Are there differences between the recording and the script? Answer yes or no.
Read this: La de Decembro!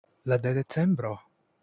no